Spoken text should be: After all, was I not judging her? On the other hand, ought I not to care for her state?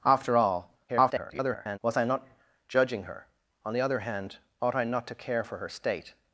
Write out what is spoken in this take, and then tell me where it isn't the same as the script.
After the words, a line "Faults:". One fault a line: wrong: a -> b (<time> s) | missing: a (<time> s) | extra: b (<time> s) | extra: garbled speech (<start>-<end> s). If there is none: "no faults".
After all, [garbled] was I not judging her? On the other hand, ought I not to care for her state?
Faults:
extra: garbled speech (0.9-1.8 s)